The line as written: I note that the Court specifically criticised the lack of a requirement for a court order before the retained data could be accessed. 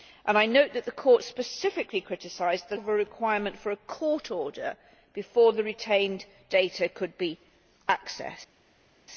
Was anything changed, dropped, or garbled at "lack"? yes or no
yes